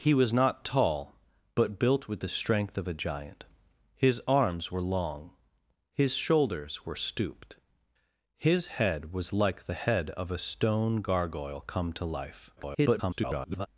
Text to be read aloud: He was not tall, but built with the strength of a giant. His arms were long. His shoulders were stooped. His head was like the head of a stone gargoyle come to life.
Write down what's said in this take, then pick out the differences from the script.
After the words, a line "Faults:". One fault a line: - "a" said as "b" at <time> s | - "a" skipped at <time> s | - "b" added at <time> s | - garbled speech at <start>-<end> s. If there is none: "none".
He was not tall, but built with the strength of a giant. His arms were long. His shoulders were stooped. His head was like the head of a stone gargoyle come to life. [garbled]
Faults:
- garbled speech at 12.6-13.7 s